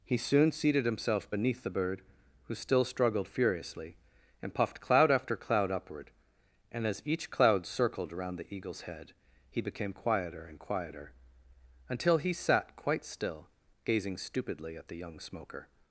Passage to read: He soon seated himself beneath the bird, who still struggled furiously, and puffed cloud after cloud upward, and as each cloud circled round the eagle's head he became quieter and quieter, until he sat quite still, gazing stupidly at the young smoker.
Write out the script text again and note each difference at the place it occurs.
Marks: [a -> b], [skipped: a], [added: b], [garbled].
He soon seated himself beneath the bird, who still struggled furiously, and puffed cloud after cloud upward, and as each cloud circled [round -> around] the eagle's head he became quieter and quieter, until he sat quite still, gazing stupidly at the young smoker.